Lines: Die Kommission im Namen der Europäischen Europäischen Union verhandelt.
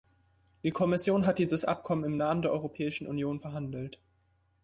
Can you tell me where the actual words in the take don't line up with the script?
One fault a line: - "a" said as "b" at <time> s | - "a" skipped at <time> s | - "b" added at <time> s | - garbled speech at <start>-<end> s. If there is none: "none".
- "hat dieses Abkommen" added at 1.3 s
- "Europäischen" skipped at 3.1 s